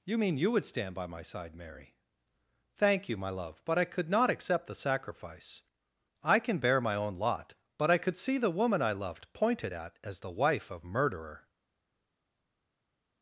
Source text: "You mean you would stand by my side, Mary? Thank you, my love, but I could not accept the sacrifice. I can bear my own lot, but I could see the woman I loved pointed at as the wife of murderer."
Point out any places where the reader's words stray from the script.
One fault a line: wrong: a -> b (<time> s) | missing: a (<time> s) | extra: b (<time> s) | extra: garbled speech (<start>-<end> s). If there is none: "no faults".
no faults